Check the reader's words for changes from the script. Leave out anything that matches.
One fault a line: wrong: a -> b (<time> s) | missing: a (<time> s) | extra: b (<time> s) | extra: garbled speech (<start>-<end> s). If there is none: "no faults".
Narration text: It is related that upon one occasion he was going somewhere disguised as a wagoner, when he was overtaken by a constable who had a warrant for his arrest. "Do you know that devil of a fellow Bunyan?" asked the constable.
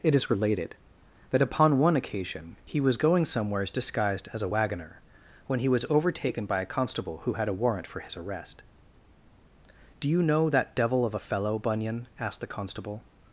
wrong: somewhere -> somewheres (3.2 s)